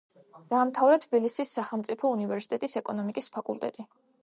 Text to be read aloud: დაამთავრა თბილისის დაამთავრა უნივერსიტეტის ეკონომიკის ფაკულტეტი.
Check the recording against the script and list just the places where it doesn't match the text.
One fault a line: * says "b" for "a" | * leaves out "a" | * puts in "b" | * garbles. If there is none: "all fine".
* says "სახელმწიფო" for "დაამთავრა"